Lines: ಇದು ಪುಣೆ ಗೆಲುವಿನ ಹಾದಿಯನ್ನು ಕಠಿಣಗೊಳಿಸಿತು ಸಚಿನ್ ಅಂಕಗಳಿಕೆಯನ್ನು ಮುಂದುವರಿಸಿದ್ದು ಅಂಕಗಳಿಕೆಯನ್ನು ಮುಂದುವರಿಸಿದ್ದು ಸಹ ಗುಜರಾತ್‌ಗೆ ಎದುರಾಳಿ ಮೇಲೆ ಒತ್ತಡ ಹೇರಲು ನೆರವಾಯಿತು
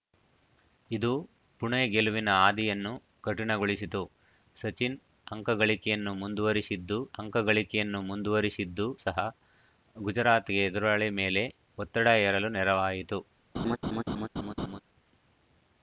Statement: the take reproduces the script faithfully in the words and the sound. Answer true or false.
false